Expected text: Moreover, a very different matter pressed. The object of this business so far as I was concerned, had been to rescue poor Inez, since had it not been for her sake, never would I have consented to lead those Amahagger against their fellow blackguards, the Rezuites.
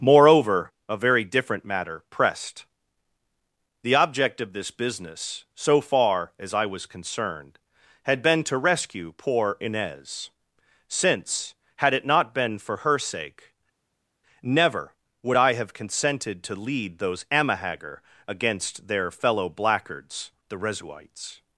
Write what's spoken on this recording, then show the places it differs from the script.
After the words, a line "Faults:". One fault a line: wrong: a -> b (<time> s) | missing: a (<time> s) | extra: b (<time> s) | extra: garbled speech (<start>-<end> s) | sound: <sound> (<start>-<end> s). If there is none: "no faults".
Moreover, a very different matter pressed. The object of this business so far as I was concerned, had been to rescue poor Inez, since had it not been for her sake, never would I have consented to lead those Amahagger against their fellow blackguards, the Rezuites.
Faults:
no faults